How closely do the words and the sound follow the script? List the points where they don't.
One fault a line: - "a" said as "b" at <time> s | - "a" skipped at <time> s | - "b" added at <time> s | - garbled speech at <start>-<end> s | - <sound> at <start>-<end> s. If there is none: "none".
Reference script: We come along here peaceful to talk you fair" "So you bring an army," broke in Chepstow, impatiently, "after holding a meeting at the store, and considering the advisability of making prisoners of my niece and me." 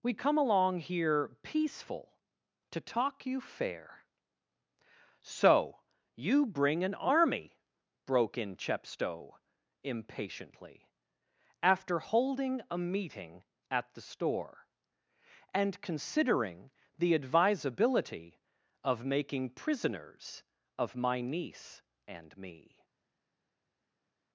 none